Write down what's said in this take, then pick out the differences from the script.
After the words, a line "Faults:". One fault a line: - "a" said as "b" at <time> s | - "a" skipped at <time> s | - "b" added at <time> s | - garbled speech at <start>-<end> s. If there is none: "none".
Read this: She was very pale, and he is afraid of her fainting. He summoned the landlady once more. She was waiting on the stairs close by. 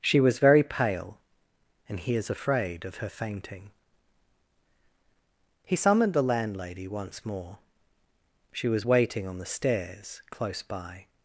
She was very pale, and he is afraid of her fainting. He summoned the landlady once more. She was waiting on the stairs close by.
Faults:
none